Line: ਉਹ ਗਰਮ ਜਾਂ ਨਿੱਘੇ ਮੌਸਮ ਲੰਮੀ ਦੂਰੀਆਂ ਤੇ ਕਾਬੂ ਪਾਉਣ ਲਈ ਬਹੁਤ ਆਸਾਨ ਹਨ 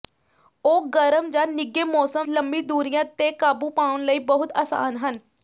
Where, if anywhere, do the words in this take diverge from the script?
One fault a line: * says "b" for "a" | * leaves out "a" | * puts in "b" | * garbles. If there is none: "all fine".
all fine